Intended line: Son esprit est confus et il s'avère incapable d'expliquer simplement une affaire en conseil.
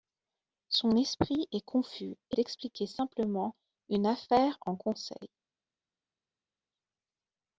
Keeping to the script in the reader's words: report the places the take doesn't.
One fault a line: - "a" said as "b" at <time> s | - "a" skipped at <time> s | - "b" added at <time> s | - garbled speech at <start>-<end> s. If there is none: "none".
- "il s'avère incapable" skipped at 2.4 s